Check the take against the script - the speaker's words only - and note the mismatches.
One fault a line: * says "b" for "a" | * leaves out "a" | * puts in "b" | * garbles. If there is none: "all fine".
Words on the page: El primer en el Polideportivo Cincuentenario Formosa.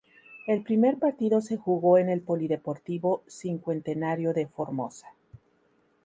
* puts in "partido se jugó"
* puts in "de"